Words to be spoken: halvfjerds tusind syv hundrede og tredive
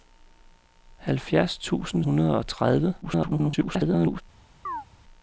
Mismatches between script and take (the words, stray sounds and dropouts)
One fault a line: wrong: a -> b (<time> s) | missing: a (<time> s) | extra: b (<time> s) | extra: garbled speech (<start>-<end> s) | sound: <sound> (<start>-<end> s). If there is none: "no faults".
missing: syv (2.0 s)
extra: garbled speech (3.0-4.2 s)
sound: chirp (4.7-4.9 s)